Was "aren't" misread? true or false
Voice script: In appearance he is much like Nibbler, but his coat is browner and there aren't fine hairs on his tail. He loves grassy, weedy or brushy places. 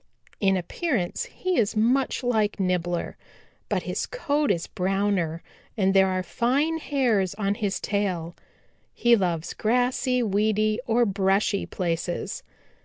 true